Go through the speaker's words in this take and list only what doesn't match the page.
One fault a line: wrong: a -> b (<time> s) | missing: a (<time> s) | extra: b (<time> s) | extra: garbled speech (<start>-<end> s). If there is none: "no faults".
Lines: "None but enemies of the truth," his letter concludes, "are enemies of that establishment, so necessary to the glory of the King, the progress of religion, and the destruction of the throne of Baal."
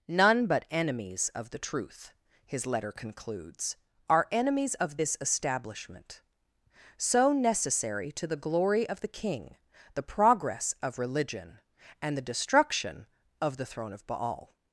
wrong: that -> this (4.9 s)